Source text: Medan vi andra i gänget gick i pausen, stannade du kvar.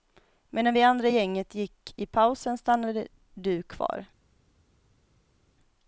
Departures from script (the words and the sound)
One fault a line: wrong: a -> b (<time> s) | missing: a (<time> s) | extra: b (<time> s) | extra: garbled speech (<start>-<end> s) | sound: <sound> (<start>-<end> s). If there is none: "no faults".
no faults